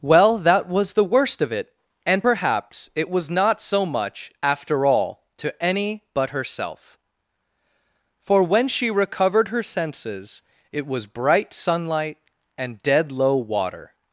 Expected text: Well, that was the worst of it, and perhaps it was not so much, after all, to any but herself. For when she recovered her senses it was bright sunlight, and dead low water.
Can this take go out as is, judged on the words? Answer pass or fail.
pass